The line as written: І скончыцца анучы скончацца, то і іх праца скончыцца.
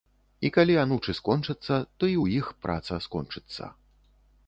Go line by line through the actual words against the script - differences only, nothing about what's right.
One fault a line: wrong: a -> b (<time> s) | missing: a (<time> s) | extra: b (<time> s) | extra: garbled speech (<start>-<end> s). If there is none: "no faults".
wrong: скончыцца -> калі (0.6 s)
extra: ў (2.2 s)